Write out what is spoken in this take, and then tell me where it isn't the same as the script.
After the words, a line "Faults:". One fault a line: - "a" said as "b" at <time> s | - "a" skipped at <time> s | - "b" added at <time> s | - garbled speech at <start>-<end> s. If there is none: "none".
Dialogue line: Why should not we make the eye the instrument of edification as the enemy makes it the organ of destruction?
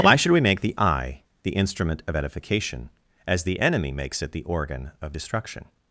Why should we make the eye the instrument of edification as the enemy makes it the organ of destruction?
Faults:
- "not" skipped at 0.3 s